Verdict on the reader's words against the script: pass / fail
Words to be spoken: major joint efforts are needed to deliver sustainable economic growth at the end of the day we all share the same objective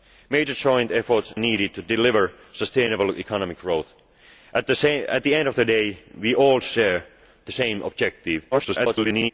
fail